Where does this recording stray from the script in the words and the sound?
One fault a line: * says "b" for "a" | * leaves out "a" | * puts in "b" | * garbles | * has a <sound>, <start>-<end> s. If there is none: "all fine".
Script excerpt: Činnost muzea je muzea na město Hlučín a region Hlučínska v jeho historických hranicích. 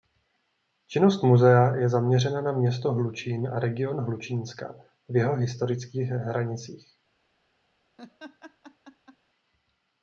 * says "zaměřena" for "muzea"
* has a laugh, 8.0-9.2 s